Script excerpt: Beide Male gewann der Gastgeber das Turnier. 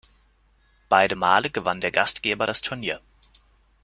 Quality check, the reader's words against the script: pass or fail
pass